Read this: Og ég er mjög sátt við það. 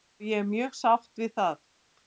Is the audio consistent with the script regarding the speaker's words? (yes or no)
yes